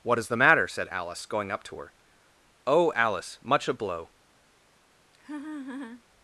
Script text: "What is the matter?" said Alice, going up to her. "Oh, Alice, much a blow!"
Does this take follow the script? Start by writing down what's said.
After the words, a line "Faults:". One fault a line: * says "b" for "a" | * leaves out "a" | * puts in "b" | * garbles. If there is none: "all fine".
"What is the matter?" said Alice, going up to her. "Oh, Alice, much a blow!"
Faults:
all fine